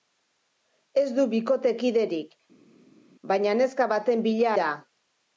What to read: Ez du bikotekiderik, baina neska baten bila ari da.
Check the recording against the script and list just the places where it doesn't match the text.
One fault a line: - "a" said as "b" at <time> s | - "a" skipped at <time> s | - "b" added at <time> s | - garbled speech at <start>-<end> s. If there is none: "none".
- "ari" skipped at 4.5 s